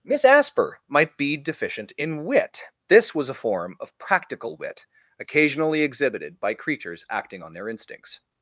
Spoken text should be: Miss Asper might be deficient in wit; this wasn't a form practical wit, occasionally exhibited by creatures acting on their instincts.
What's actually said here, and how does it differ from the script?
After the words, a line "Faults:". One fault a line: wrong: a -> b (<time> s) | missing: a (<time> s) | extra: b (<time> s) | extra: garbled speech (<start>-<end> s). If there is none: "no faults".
Miss Asper might be deficient in wit; this was a form of practical wit, occasionally exhibited by creatures acting on their instincts.
Faults:
wrong: wasn't -> was (3.1 s)
extra: of (3.8 s)